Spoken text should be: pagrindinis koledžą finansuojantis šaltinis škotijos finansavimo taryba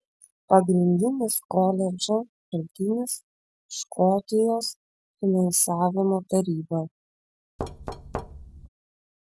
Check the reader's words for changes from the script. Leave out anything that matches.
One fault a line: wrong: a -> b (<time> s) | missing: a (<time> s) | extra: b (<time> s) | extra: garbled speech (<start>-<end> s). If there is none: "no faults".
missing: finansuojantis (2.2 s)